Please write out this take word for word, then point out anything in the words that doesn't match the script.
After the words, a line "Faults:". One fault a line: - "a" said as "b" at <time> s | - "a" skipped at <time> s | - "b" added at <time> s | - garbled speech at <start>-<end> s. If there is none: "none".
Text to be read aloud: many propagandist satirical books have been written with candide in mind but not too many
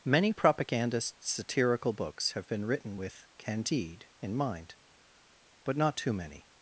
many propagandist satirical books have been written with candide in mind but not too many
Faults:
none